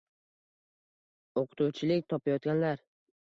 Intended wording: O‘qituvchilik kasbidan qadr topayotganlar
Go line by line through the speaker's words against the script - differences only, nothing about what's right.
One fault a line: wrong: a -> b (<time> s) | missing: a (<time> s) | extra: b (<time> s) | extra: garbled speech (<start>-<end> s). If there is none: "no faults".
missing: kasbidan qadr (2.1 s)